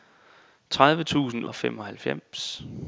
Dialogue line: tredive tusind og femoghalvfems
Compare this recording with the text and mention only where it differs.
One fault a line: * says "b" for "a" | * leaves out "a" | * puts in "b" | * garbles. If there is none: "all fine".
all fine